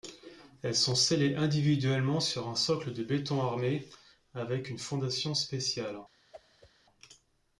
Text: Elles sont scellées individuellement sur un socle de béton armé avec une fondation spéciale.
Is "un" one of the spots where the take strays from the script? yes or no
no